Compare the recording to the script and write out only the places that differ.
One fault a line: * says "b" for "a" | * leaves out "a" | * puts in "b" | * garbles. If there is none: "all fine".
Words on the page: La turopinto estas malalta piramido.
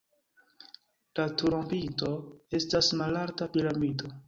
all fine